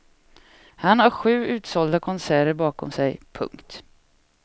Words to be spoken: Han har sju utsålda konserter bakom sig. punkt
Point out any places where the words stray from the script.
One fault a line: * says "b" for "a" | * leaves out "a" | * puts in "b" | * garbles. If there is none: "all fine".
all fine